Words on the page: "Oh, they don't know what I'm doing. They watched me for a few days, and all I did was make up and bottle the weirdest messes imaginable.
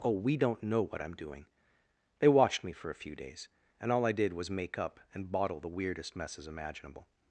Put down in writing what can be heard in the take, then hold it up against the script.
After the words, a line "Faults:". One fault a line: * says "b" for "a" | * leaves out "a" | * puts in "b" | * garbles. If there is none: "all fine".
"Oh, we don't know what I'm doing. They watched me for a few days, and all I did was make up and bottle the weirdest messes imaginable.
Faults:
* says "we" for "they"